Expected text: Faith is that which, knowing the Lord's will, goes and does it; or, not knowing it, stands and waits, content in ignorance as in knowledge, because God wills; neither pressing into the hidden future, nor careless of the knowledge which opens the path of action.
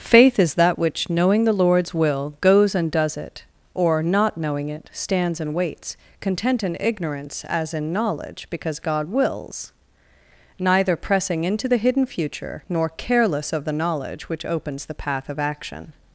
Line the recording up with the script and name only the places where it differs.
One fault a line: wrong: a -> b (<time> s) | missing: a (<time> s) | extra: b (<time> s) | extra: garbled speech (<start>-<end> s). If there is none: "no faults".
no faults